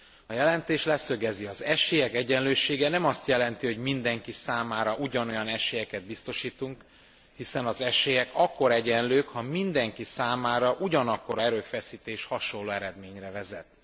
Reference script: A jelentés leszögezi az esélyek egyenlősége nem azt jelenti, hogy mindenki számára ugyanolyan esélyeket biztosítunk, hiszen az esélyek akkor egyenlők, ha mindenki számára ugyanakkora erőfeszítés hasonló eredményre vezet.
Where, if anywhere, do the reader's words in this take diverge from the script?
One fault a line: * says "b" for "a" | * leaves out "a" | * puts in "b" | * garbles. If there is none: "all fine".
all fine